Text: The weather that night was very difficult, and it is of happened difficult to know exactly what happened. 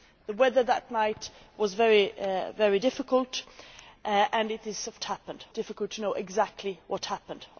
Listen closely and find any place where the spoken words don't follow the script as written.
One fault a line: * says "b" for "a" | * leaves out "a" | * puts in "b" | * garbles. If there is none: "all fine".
all fine